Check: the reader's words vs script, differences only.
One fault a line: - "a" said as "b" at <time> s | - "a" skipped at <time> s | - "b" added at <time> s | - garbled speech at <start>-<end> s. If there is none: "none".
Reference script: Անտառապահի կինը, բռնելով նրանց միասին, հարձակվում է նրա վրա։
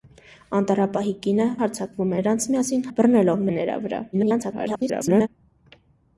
- "բռնելով" said as "հարձակվում" at 1.6 s
- "հարձակվում" said as "բռնելով" at 3.0 s
- garbled speech at 4.1-5.3 s